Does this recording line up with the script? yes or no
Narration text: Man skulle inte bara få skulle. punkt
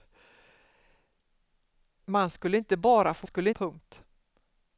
yes